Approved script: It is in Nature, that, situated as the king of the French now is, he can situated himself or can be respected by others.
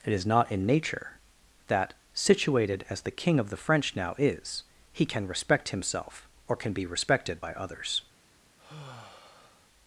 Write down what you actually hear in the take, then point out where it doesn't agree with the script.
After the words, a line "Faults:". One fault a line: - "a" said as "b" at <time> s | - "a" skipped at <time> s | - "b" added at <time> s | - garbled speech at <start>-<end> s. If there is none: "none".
It is not in Nature, that, situated as the king of the French now is, he can respect himself or can be respected by others.
Faults:
- "not" added at 0.2 s
- "situated" said as "respect" at 5.3 s